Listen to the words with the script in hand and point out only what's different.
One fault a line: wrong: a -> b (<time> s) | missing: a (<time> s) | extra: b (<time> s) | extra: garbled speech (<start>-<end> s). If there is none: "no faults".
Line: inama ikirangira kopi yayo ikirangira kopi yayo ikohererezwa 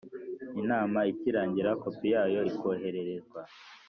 missing: ikirangira kopi yayo (2.4 s)